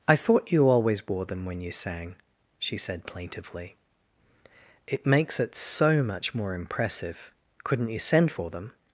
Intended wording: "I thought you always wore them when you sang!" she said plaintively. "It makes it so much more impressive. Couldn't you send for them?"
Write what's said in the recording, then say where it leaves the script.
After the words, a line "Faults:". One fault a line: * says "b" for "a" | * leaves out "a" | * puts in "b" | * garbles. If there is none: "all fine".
"I thought you always wore them when you sang!" she said plaintively. "It makes it so much more impressive. Couldn't you send for them?"
Faults:
all fine